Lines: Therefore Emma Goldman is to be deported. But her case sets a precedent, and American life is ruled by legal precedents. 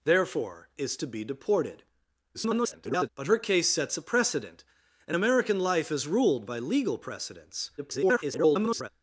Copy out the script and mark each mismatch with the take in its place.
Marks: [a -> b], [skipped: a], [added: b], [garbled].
Therefore [skipped: Emma Goldman] is to be deported. [garbled] But her case sets a precedent, and American life is ruled by legal precedents. [garbled]